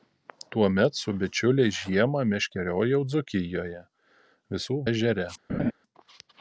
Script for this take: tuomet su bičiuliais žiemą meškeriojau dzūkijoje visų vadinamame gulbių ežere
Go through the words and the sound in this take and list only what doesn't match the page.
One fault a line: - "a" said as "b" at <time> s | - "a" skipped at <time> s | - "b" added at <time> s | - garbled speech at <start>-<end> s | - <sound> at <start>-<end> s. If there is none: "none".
- "vadinamame gulbių" skipped at 4.8 s
- laugh at 5.5-5.7 s